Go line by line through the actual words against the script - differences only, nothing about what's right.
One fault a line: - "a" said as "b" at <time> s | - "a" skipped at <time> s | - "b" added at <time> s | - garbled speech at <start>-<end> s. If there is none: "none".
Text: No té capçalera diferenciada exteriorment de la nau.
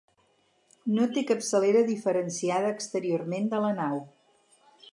none